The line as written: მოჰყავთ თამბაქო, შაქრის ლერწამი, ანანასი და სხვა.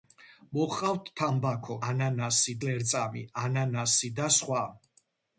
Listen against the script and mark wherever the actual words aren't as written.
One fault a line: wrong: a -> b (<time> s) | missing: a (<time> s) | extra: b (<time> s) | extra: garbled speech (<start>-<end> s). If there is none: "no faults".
wrong: შაქრის -> ანანასი (1.9 s)